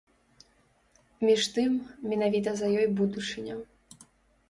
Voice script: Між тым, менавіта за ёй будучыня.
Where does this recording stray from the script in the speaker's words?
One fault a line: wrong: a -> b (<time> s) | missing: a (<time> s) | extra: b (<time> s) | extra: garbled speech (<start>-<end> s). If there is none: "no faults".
no faults